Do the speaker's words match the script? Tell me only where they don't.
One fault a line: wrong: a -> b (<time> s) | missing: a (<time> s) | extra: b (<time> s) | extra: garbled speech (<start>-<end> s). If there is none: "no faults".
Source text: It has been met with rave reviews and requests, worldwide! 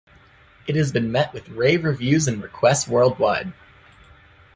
no faults